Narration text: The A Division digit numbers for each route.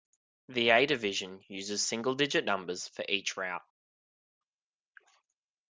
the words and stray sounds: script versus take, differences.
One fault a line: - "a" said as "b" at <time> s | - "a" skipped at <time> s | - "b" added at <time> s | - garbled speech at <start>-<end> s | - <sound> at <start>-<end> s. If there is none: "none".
- "uses single" added at 1.5 s